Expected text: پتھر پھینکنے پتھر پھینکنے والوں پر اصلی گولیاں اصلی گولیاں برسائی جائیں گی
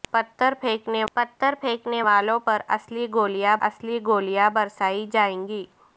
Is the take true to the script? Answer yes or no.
yes